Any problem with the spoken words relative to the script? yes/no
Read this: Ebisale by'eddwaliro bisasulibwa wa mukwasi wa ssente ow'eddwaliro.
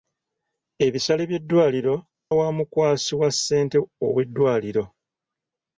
yes